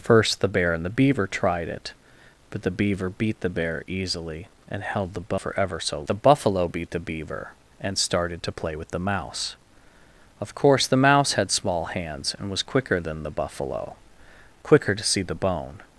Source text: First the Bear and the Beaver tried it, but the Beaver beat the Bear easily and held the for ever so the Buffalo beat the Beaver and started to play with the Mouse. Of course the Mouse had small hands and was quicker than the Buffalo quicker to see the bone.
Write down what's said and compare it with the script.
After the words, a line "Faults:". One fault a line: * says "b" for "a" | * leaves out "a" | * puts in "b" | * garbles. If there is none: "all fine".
First the Bear and the Beaver tried it, but the Beaver beat the Bear easily and held the for ever so the Buffalo beat the Beaver and started to play with the Mouse. Of course the Mouse had small hands and was quicker than the Buffalo quicker to see the bone.
Faults:
all fine